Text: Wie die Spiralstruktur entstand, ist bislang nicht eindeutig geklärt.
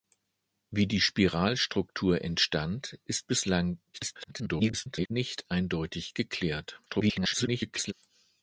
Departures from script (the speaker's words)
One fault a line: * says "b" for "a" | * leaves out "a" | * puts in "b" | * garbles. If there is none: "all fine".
* garbles
* garbles